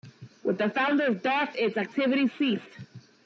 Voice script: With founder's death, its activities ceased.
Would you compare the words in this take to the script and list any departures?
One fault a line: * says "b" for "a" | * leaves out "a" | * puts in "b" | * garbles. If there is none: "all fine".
* puts in "the"